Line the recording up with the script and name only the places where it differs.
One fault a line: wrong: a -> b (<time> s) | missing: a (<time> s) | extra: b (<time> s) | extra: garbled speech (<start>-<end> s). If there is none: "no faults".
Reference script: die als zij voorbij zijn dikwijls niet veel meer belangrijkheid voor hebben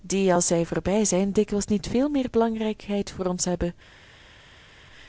extra: ons (3.3 s)